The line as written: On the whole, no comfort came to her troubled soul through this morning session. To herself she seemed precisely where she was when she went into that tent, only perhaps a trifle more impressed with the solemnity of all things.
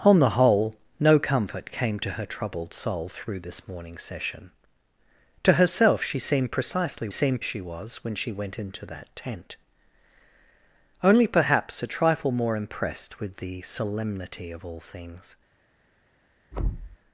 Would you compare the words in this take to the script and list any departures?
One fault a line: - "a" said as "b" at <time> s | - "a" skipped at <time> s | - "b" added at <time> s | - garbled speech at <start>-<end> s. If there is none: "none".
- "where" said as "seemed" at 7.1 s